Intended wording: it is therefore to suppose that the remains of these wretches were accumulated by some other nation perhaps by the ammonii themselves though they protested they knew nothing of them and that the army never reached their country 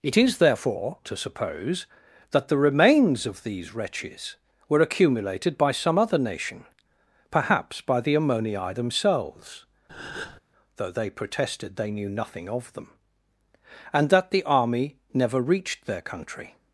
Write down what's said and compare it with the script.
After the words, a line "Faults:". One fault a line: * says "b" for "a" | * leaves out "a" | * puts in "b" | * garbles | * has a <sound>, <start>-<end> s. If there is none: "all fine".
it is therefore to suppose that the remains of these wretches were accumulated by some other nation perhaps by the ammonii themselves though they protested they knew nothing of them and that the army never reached their country
Faults:
* has a breath, 9.9-10.4 s